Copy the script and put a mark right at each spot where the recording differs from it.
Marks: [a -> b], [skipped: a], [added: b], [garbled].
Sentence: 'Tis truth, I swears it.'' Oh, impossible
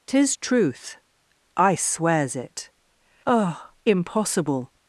'Tis truth, I swears it.'' Oh, impossible